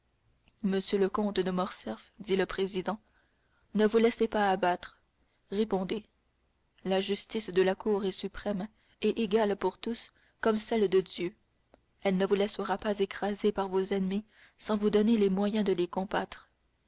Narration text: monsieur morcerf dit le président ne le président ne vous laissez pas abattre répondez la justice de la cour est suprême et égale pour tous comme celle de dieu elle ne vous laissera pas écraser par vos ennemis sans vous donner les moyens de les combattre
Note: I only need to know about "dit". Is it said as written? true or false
false